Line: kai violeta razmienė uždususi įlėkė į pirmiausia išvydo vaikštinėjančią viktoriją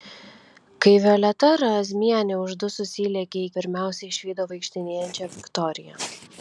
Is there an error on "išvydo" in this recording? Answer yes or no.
no